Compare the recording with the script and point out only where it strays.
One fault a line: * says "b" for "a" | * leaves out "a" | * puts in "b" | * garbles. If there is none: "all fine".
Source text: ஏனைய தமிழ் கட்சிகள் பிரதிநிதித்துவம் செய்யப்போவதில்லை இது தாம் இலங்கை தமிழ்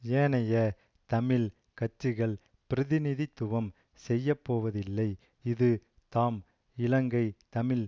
all fine